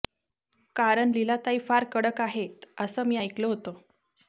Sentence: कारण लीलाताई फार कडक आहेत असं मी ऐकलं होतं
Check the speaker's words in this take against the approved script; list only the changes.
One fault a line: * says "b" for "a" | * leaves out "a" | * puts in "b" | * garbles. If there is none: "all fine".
all fine